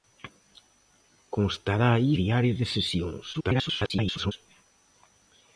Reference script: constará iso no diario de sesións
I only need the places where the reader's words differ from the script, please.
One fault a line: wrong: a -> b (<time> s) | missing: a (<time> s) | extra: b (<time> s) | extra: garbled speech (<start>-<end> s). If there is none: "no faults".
missing: iso no (1.9 s)
extra: garbled speech (3.3-4.3 s)